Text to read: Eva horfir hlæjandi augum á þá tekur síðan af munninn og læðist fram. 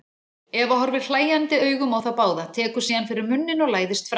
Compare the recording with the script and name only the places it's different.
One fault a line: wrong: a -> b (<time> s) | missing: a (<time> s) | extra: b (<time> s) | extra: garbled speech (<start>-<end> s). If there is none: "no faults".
extra: báða (2.2 s)
wrong: af -> fyrir (3.1 s)